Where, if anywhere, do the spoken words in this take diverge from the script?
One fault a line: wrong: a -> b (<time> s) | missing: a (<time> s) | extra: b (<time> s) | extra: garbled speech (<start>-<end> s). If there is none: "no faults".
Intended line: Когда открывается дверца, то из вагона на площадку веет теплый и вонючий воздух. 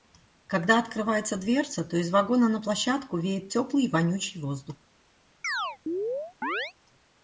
no faults